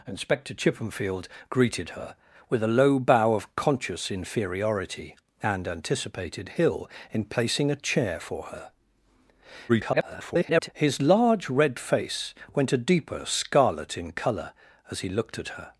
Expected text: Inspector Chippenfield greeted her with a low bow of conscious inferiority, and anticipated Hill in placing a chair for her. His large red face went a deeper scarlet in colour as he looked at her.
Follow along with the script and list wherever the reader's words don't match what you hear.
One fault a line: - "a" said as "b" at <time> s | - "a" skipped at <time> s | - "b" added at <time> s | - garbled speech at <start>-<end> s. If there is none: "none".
- garbled speech at 9.7-10.7 s